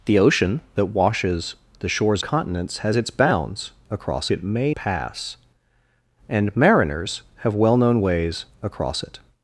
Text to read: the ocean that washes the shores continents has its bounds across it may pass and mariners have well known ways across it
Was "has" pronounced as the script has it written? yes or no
yes